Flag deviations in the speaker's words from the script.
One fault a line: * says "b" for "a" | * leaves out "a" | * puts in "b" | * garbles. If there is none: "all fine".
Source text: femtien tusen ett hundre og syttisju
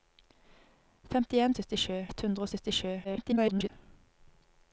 * says "syttisju" for "tusen"
* garbles